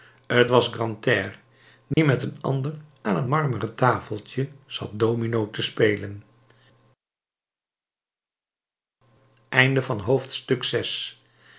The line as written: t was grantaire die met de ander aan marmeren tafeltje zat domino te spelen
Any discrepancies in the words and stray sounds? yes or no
yes